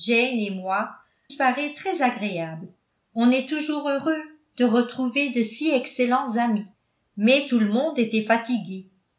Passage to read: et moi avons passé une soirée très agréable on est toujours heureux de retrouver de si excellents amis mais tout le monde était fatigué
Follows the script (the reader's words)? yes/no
no